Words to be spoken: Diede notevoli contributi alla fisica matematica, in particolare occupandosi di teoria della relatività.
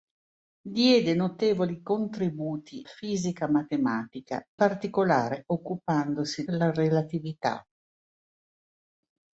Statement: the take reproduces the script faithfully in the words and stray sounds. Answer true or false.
false